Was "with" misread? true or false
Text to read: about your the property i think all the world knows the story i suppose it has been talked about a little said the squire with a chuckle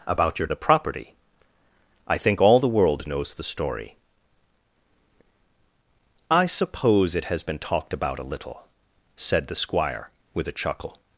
false